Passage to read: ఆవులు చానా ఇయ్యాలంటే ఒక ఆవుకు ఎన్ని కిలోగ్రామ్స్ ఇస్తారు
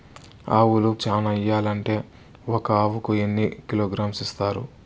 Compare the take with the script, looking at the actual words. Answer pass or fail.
pass